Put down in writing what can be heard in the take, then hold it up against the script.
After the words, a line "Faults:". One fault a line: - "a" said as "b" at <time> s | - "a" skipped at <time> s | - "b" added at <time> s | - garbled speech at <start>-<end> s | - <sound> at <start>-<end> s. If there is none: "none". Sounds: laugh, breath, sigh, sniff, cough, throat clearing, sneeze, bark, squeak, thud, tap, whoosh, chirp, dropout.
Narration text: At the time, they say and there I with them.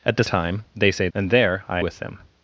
At the time, they say and there I with them.
Faults:
none